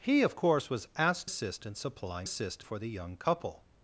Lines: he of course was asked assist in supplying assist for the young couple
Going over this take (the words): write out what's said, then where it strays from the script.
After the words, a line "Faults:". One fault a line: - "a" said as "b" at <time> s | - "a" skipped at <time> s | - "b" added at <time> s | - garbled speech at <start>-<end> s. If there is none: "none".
he of course was asked assist in supplying assist for the young couple
Faults:
none